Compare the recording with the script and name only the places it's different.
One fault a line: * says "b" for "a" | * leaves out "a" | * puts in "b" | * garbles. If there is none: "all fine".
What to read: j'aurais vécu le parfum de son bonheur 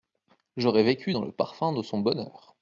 * puts in "dans"